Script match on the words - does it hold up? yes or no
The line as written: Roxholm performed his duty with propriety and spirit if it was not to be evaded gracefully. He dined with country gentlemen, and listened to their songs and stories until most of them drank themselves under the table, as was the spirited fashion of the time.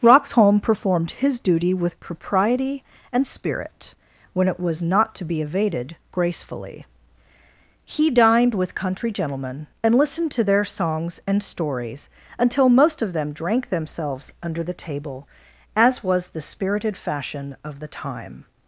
no